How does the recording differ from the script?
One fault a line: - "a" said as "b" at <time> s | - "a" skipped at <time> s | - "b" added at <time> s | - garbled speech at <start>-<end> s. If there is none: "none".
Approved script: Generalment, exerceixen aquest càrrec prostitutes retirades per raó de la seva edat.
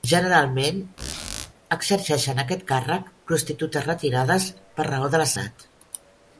- "seva" skipped at 5.3 s